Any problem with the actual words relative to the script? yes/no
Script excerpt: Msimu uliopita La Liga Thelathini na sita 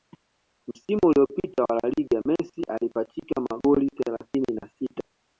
yes